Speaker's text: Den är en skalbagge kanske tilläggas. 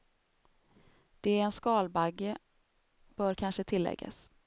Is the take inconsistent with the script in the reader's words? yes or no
yes